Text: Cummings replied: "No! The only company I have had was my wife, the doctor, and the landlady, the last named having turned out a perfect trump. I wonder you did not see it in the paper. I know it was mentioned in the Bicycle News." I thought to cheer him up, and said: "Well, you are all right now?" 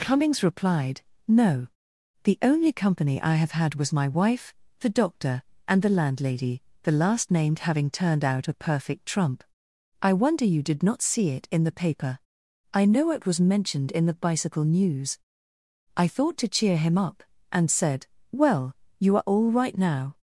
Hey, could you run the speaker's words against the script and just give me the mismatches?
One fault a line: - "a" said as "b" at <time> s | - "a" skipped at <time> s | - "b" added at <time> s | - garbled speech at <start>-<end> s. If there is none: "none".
none